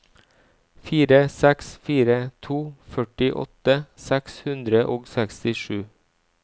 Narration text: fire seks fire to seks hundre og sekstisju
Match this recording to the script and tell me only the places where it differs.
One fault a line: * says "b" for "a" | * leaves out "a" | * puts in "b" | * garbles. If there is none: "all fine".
* puts in "førtiåtte"